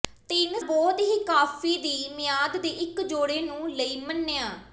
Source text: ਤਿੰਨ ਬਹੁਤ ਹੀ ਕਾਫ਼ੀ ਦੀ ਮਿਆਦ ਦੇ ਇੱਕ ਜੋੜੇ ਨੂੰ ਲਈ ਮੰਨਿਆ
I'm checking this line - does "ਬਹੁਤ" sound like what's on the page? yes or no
yes